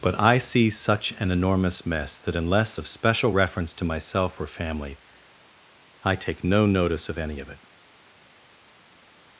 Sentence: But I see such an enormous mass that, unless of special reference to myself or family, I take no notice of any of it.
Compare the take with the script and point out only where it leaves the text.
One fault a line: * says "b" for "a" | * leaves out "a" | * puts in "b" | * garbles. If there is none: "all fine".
* says "mess" for "mass"